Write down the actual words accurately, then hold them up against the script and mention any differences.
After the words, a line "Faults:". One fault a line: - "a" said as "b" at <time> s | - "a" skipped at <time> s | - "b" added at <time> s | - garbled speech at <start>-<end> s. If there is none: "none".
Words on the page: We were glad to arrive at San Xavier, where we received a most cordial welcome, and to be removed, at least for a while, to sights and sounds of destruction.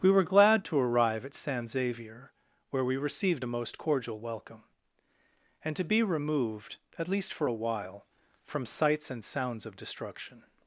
We were glad to arrive at San Xavier, where we received a most cordial welcome, and to be removed, at least for a while, from sights and sounds of destruction.
Faults:
- "to" said as "from" at 8.4 s